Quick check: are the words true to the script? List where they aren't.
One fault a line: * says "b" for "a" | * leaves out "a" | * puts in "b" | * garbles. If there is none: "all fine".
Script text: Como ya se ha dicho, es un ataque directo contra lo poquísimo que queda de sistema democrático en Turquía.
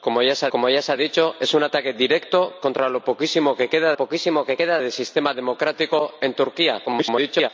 * puts in "como ya se"
* puts in "poquísimo que queda"
* garbles